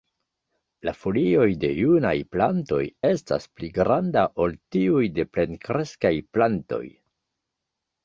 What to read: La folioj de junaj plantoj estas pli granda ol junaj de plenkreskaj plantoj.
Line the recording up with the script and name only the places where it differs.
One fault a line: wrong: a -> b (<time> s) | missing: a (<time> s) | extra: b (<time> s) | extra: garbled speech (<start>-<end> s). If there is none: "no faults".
wrong: junaj -> tiuj (4.8 s)